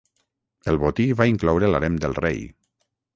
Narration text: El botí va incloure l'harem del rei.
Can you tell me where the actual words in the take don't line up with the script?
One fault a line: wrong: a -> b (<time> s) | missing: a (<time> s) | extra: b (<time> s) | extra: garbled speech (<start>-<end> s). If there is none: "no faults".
no faults